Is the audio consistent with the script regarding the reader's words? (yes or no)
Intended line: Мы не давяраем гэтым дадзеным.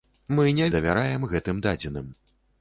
yes